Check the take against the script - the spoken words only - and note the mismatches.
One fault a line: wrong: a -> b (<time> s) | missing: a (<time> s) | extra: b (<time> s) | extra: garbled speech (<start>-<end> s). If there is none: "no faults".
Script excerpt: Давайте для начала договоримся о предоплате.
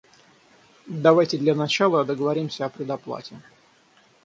no faults